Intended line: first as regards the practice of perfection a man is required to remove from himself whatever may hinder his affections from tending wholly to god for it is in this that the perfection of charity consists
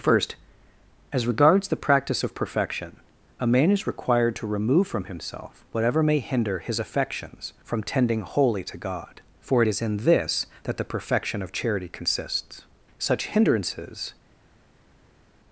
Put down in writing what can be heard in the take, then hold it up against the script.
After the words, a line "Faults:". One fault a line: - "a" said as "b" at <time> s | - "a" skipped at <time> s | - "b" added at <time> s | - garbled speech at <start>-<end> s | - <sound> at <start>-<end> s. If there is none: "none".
first as regards the practice of perfection a man is required to remove from himself whatever may hinder his affections from tending wholly to god for it is in this that the perfection of charity consists such hindrances
Faults:
- "such hindrances" added at 13.0 s